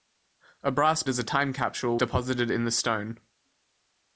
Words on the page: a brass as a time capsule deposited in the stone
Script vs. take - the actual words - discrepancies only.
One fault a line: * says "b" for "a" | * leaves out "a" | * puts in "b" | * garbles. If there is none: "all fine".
all fine